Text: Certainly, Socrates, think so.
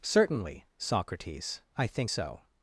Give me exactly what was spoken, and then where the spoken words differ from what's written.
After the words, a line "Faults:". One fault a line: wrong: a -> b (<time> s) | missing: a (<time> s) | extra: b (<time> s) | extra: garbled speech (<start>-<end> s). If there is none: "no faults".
Certainly, Socrates, I think so.
Faults:
extra: I (1.8 s)